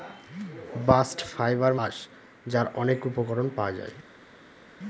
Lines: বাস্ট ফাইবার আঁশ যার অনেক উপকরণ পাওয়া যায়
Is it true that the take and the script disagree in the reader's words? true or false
false